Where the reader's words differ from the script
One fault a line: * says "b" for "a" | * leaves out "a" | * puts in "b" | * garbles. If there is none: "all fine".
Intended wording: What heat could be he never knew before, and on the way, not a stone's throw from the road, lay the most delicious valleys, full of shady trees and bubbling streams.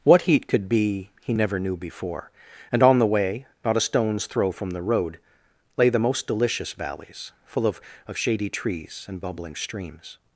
* puts in "of"